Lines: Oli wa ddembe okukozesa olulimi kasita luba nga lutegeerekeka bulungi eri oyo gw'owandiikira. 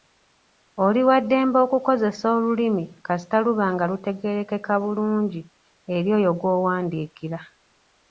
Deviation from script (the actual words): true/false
false